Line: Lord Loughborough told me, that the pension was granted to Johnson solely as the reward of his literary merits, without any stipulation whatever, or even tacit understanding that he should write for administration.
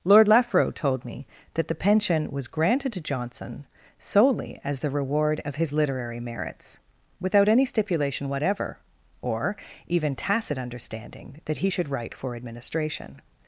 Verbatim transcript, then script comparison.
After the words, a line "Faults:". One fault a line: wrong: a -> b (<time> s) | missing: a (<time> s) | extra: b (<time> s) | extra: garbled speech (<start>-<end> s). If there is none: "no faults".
Lord Loughborough told me, that the pension was granted to Johnson solely as the reward of his literary merits, without any stipulation whatever, or even tacit understanding that he should write for administration.
Faults:
no faults